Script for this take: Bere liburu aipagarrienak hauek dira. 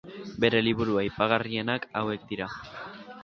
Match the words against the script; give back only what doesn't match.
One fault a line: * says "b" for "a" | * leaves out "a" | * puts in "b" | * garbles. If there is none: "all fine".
all fine